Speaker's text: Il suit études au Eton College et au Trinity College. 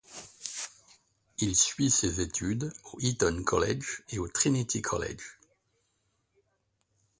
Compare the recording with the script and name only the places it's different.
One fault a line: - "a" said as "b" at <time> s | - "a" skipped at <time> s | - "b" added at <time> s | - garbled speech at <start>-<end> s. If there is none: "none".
- "ses" added at 1.9 s